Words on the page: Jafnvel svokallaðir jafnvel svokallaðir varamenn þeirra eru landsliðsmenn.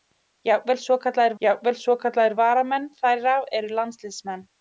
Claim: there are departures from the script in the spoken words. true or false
false